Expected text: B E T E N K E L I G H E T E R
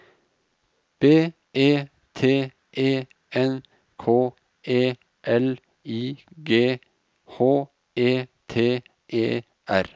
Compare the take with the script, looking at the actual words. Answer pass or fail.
pass